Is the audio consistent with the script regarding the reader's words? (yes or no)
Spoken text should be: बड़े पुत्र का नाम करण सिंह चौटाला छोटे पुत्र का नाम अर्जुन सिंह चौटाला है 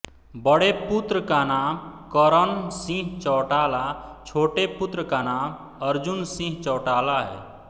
yes